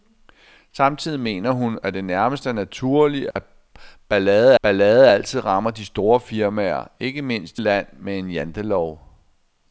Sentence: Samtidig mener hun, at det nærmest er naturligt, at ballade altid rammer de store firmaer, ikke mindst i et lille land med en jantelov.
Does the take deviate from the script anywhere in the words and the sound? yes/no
yes